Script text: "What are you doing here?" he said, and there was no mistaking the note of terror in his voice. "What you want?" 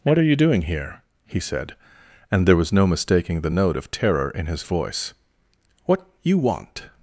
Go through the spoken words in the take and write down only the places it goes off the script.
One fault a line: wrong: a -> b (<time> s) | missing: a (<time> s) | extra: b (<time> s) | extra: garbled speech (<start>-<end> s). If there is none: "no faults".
no faults